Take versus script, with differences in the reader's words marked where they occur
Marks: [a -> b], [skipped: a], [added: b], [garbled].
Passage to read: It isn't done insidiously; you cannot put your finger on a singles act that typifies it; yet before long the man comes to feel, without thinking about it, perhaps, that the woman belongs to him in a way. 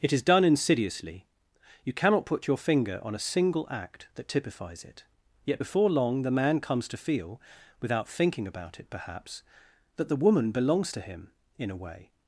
It [isn't -> is] done insidiously; you cannot put your finger on a [singles -> single] act that typifies it; yet before long the man comes to feel, without thinking about it, perhaps, that the woman belongs to him in a way.